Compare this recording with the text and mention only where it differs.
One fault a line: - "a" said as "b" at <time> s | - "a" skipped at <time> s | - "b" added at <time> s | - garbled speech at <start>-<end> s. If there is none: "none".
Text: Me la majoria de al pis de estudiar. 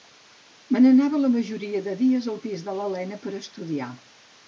- "n'anava" added at 0.8 s
- "dies" added at 2.0 s
- "l'Elena per" added at 2.8 s